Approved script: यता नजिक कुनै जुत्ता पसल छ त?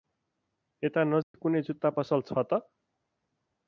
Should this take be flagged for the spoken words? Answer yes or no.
no